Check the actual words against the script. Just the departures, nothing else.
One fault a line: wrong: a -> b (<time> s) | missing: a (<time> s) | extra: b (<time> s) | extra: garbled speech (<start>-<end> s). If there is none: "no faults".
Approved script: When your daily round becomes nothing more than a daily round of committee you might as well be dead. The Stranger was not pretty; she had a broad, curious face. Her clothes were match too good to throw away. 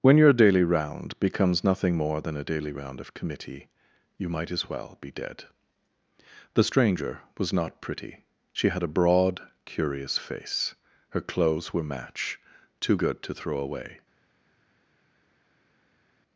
no faults